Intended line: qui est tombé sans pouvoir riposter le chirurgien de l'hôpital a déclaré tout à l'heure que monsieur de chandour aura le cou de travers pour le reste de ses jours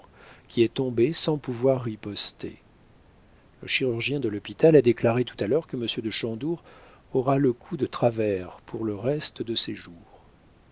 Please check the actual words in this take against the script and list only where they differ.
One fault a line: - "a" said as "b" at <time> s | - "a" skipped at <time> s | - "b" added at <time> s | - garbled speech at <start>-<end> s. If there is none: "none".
none